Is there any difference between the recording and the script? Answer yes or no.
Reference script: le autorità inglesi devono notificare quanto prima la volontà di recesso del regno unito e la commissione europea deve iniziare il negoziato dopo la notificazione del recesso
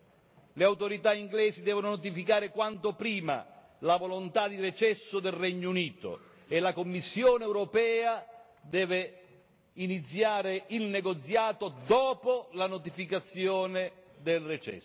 no